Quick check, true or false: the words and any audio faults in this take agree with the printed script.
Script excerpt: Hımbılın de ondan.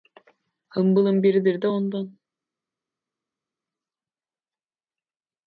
false